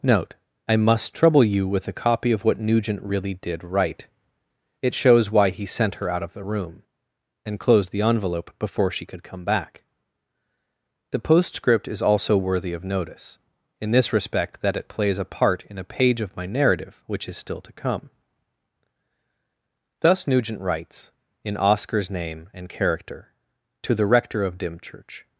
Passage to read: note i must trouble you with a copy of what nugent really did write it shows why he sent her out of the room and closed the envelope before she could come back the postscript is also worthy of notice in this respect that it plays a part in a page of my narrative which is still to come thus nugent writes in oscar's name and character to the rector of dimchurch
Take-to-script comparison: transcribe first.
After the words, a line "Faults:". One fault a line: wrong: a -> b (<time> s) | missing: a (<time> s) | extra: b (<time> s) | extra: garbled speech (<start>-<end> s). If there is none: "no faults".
note i must trouble you with a copy of what nugent really did write it shows why he sent her out of the room and closed the envelope before she could come back the postscript is also worthy of notice in this respect that it plays a part in a page of my narrative which is still to come thus nugent writes in oscar's name and character to the rector of dimchurch
Faults:
no faults